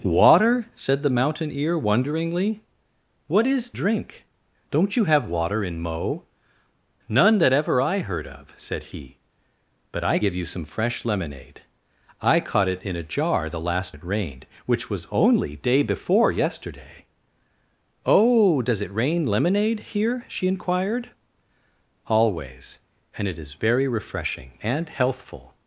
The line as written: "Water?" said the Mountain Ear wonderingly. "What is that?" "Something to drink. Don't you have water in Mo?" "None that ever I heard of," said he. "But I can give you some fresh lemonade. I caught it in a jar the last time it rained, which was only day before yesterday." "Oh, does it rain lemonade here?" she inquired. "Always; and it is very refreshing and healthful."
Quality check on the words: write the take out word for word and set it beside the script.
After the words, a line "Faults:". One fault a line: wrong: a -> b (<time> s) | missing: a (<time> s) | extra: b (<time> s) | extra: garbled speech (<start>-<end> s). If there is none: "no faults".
"Water?" said the Mountain Ear wonderingly. "What is drink. Don't you have water in Mo?" "None that ever I heard of," said he. "But I give you some fresh lemonade. I caught it in a jar the last it rained, which was only day before yesterday." "Oh, does it rain lemonade here?" she inquired. "Always; and it is very refreshing and healthful."
Faults:
missing: that Something to (3.7 s)
missing: can (10.2 s)
missing: time (14.0 s)